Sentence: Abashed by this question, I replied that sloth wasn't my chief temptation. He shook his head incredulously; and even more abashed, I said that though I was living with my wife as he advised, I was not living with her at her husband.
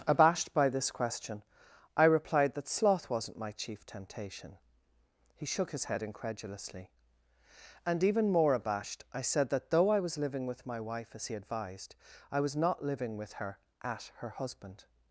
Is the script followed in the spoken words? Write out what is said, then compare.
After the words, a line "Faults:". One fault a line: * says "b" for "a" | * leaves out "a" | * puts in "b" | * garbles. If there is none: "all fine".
Abashed by this question, I replied that sloth wasn't my chief temptation. He shook his head incredulously; and even more abashed, I said that though I was living with my wife as he advised, I was not living with her at her husband.
Faults:
all fine